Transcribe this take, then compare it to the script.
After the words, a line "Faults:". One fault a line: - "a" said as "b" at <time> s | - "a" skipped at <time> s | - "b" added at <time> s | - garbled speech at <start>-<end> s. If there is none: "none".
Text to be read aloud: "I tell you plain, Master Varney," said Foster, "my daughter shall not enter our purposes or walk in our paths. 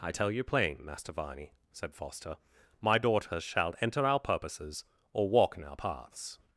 "I tell you plain, Master Varney," said Foster, "my daughter shall enter our purposes or walk in our paths.
Faults:
- "not" skipped at 3.7 s